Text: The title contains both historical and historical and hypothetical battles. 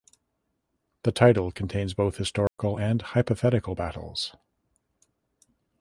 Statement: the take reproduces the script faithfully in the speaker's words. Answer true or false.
false